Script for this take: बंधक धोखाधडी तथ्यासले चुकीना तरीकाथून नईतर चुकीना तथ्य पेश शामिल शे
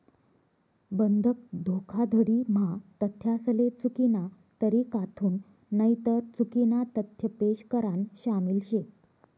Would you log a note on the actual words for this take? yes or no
yes